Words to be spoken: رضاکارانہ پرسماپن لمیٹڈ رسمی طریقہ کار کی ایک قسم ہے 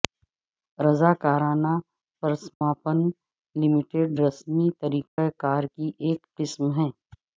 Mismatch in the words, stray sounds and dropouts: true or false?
true